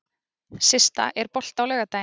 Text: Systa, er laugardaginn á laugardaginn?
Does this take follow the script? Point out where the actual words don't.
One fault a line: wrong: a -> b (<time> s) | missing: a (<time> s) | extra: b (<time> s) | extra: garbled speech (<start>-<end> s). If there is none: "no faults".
wrong: laugardaginn -> bolti (1.4 s)